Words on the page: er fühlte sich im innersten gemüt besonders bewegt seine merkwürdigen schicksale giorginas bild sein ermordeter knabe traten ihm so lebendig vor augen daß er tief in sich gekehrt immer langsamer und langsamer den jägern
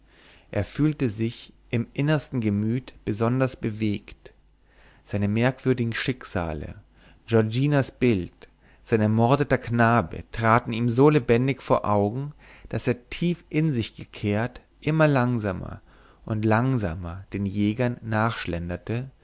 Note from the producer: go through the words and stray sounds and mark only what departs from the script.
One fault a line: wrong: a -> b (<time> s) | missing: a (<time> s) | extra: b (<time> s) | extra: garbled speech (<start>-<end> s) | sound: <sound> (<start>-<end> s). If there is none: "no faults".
no faults